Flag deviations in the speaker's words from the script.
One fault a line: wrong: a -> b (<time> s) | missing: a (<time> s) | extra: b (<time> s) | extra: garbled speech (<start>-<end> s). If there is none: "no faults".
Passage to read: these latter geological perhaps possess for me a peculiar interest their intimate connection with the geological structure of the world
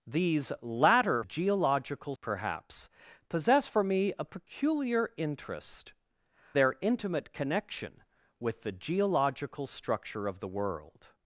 no faults